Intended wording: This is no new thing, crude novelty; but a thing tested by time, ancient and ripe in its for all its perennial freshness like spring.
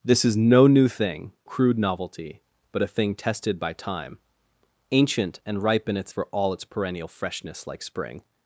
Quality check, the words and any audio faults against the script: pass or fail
pass